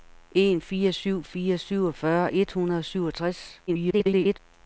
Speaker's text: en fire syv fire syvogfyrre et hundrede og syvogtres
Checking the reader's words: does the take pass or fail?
fail